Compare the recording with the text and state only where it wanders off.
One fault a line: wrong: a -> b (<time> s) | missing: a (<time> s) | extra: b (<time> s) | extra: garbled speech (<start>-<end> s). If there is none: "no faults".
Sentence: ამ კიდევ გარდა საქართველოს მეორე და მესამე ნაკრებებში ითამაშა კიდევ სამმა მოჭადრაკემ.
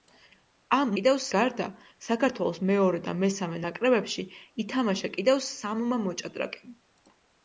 no faults